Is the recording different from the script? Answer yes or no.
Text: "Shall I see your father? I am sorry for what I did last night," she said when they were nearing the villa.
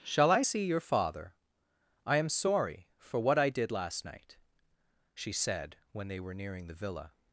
no